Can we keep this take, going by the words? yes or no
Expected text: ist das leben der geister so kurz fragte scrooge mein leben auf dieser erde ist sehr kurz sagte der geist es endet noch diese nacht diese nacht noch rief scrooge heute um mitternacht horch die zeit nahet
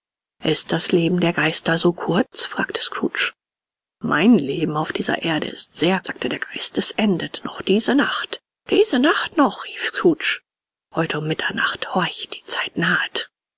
no